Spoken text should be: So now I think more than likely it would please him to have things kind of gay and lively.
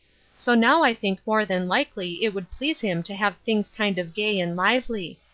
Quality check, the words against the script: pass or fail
pass